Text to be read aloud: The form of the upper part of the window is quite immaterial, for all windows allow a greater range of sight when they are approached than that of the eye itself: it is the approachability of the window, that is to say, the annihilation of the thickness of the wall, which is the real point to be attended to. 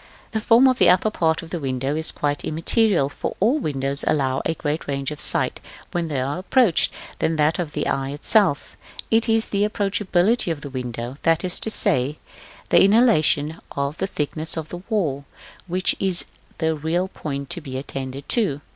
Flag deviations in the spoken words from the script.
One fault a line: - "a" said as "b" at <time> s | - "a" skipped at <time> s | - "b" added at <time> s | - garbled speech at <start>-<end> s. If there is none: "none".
none